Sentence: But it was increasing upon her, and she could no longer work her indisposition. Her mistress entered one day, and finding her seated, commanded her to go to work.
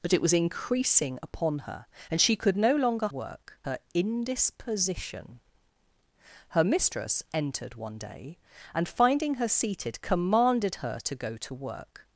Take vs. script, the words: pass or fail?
pass